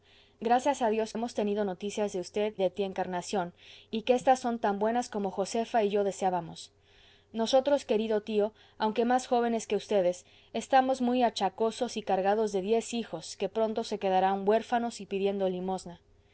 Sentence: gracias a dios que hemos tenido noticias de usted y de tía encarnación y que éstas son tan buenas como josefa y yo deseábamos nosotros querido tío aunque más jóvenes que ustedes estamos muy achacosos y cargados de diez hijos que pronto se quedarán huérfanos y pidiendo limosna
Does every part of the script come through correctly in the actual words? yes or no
no